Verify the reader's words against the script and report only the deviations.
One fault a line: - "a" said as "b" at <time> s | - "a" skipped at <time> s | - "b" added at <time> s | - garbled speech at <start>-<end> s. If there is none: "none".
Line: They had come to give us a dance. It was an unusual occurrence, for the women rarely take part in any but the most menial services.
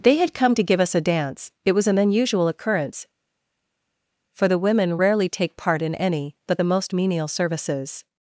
none